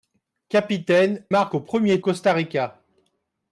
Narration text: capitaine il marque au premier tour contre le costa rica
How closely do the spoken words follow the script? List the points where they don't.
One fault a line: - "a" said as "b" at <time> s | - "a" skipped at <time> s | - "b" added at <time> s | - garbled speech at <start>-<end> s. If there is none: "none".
- "il" skipped at 1.3 s
- "tour contre le" skipped at 2.0 s